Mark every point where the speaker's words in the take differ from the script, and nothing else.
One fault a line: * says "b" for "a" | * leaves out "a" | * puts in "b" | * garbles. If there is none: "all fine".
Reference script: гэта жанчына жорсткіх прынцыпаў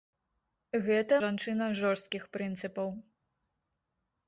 all fine